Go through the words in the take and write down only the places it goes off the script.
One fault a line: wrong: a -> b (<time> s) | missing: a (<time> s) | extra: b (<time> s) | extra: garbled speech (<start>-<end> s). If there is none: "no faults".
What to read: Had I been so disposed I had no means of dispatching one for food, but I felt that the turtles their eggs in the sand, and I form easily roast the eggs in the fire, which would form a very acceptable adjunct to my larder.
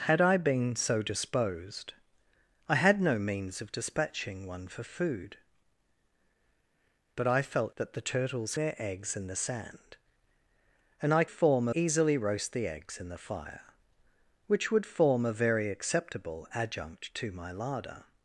no faults